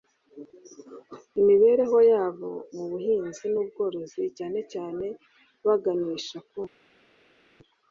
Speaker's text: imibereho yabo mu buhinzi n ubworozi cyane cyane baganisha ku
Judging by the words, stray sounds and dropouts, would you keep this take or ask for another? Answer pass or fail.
pass